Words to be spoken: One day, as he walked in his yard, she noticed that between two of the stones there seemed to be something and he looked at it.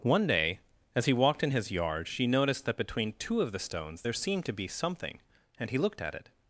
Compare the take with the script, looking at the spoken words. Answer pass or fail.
pass